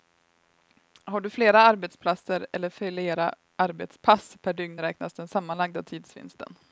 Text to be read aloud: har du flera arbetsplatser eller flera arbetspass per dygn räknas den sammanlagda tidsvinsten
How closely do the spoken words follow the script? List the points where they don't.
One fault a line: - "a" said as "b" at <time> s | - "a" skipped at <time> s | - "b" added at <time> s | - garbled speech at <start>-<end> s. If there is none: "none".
none